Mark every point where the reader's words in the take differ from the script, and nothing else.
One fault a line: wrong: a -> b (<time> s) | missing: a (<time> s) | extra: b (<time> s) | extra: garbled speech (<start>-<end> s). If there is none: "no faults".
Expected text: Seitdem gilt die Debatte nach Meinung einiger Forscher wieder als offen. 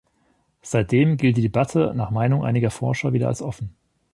no faults